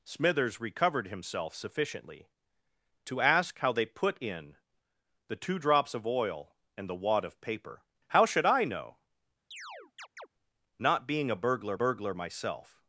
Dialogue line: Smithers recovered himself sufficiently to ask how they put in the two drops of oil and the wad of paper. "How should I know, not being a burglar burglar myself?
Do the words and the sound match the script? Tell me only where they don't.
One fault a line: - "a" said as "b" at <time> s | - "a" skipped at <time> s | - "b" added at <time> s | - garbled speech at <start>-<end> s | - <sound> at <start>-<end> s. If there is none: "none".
- chirp at 9.5-10.3 s